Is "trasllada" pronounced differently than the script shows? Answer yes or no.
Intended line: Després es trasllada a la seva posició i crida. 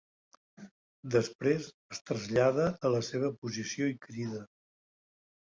no